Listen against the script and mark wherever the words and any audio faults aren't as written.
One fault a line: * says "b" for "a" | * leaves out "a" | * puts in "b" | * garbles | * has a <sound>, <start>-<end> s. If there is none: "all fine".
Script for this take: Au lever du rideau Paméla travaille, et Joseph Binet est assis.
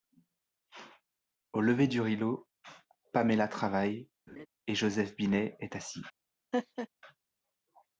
* has a laugh, 4.3-4.5 s
* has a laugh, 6.5-6.9 s